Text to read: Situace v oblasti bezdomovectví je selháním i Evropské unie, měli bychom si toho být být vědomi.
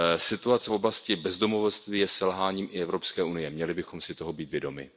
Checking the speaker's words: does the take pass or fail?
fail